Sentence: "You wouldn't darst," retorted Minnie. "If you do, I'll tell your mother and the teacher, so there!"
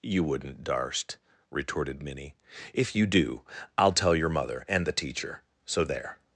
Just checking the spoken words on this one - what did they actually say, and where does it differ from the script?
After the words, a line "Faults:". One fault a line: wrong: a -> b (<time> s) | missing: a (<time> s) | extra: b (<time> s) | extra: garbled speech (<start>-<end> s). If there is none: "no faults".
"You wouldn't darst," retorted Minnie. "If you do, I'll tell your mother and the teacher, so there!"
Faults:
no faults